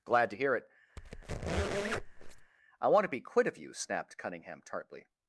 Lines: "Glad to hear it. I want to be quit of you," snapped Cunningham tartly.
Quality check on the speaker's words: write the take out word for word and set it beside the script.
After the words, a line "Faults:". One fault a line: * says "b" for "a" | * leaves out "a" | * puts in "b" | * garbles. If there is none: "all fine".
"Glad to hear it. I want to be quit of you," snapped Cunningham tartly.
Faults:
all fine